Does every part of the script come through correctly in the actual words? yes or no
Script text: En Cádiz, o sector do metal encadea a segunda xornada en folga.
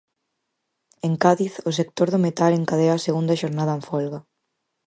yes